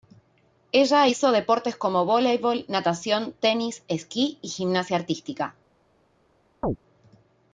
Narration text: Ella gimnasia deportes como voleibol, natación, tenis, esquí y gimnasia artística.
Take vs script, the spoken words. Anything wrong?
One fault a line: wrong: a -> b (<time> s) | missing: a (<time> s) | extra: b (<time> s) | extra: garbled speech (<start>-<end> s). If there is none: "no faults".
wrong: gimnasia -> hizo (1.0 s)